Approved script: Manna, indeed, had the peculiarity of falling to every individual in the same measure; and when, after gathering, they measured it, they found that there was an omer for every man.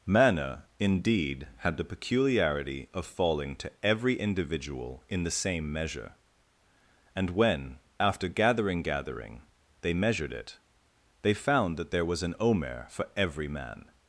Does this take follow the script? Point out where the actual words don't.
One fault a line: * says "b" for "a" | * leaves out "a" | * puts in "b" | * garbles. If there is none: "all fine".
* puts in "gathering"